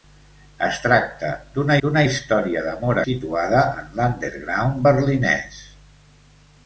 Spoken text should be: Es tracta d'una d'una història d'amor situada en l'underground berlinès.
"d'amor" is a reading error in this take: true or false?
false